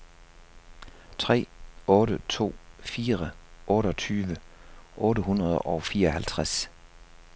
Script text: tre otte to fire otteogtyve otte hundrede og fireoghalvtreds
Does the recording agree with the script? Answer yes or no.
yes